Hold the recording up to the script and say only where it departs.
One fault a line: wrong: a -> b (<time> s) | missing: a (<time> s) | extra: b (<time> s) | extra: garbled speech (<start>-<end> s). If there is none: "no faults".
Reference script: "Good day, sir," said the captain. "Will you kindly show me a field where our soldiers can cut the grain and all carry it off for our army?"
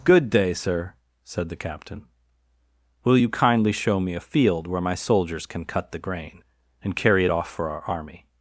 wrong: our -> my (4.8 s)
missing: all (7.0 s)